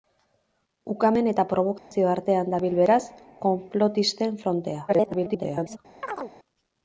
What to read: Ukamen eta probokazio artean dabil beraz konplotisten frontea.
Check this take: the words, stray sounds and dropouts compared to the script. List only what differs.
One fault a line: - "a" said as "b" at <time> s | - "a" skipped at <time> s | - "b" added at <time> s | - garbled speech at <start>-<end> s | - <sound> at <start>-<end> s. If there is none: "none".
- dropout at 1.8-1.9 s
- garbled speech at 4.9-5.8 s
- chirp at 6.0-6.3 s